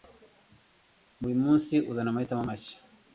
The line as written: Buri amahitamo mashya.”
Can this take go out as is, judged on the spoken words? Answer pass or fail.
fail